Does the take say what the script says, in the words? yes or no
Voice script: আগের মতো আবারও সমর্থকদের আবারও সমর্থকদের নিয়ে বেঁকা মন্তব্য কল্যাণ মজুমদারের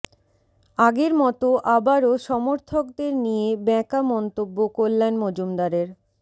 no